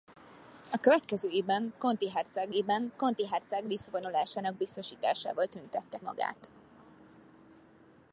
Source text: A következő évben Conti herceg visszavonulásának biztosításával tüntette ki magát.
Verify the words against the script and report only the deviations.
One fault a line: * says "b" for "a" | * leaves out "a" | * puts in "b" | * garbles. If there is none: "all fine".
* puts in "évben Conti herceg"
* leaves out "ki"